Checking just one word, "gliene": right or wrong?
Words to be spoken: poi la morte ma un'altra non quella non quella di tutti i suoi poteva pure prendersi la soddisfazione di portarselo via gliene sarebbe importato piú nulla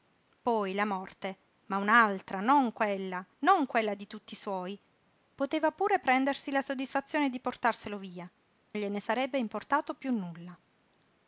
right